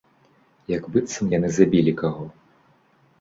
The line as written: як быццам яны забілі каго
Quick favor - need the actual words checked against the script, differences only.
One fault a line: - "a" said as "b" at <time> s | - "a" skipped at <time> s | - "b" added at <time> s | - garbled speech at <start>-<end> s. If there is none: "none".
none